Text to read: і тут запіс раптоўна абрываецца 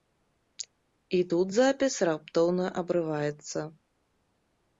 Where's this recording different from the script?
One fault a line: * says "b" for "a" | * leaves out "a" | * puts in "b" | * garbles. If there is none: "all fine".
all fine